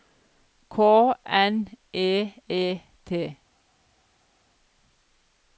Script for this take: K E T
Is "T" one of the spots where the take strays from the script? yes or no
no